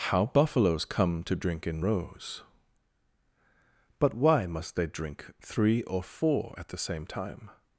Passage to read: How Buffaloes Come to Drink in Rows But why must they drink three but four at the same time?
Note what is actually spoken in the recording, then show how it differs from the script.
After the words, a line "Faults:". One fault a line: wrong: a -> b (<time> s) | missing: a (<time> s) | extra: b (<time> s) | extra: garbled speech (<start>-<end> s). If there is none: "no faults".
How Buffaloes Come to Drink in Rows But why must they drink three or four at the same time?
Faults:
wrong: but -> or (5.8 s)